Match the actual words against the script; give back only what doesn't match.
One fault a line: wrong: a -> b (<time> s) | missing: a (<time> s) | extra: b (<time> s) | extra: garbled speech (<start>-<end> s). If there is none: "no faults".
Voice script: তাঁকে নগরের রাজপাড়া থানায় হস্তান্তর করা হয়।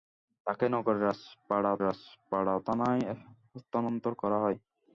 extra: রাজপাড়া (1.8 s)